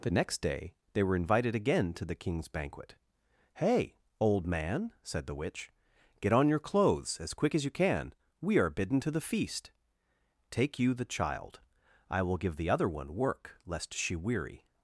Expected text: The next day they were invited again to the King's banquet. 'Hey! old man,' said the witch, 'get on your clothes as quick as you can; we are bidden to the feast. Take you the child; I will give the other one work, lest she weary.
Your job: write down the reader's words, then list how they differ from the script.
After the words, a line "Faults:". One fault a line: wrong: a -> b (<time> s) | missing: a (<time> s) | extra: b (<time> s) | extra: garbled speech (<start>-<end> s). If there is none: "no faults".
The next day they were invited again to the King's banquet. 'Hey! old man,' said the witch, 'get on your clothes as quick as you can; we are bidden to the feast. Take you the child; I will give the other one work, lest she weary.
Faults:
no faults